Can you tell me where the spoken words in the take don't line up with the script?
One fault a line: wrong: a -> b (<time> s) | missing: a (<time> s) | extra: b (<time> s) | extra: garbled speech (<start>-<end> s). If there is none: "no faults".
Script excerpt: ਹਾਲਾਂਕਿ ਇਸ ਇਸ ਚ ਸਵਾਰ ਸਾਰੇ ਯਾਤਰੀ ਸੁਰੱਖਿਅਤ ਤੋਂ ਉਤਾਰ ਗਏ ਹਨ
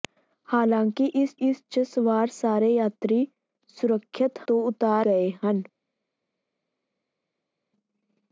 no faults